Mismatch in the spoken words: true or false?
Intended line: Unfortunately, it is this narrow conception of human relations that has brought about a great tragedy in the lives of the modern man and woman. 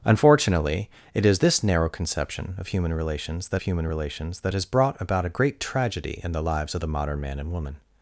true